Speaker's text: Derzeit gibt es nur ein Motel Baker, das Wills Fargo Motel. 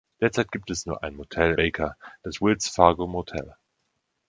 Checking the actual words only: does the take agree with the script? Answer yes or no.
yes